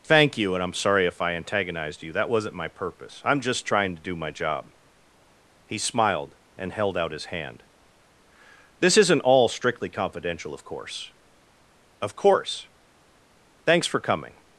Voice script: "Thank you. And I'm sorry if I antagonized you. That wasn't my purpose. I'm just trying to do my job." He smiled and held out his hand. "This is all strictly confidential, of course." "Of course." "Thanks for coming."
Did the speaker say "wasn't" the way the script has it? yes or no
yes